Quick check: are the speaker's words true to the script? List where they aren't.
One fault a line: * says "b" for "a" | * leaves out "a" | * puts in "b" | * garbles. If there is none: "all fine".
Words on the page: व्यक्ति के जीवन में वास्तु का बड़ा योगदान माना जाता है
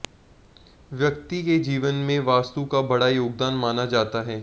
all fine